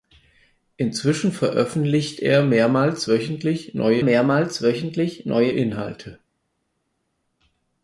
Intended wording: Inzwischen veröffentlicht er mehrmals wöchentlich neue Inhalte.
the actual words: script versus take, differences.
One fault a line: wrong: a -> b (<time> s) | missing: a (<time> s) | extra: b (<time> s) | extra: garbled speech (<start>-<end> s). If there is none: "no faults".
extra: mehrmals wöchentlich neue (4.0 s)